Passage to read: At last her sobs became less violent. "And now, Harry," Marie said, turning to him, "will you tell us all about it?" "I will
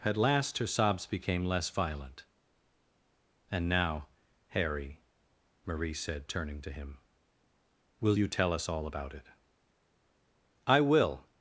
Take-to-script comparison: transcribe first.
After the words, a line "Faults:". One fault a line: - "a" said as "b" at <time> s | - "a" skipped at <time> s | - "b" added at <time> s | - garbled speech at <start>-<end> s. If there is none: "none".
At last her sobs became less violent. "And now, Harry," Marie said, turning to him, "will you tell us all about it?" "I will
Faults:
none